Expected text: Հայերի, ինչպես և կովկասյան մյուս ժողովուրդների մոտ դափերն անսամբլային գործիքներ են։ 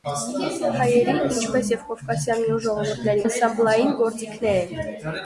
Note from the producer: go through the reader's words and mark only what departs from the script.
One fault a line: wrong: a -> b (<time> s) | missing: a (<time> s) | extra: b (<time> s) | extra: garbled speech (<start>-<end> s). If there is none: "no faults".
missing: մոտ դափերն (3.3 s)